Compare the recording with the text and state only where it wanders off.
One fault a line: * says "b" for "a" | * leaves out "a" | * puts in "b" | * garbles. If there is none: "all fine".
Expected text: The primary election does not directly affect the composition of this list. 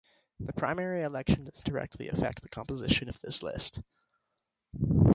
* leaves out "not"